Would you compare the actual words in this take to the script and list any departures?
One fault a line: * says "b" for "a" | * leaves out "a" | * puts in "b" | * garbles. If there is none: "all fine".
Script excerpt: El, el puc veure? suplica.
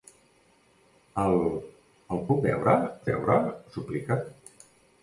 * puts in "veure"